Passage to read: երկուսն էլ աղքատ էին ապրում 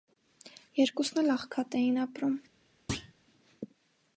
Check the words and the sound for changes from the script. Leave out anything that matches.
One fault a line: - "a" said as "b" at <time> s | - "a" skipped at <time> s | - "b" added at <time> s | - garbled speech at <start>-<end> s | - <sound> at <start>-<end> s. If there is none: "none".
- thud at 2.9-3.1 s